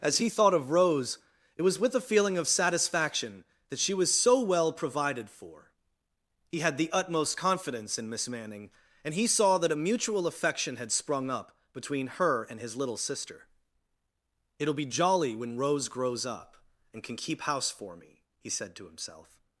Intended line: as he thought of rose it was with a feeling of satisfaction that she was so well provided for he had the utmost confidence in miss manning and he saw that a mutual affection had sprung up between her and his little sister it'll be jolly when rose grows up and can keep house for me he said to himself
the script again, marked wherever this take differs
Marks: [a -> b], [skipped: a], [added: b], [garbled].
as he thought of rose it was with a feeling of satisfaction that she was so well provided for he had the utmost confidence in miss manning and he saw that a mutual affection had sprung up between her and his little sister it'll be jolly when rose grows up and can keep house for me he said to himself